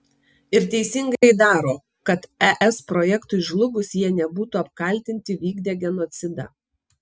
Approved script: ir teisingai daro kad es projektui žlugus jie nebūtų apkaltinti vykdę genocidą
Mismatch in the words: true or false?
false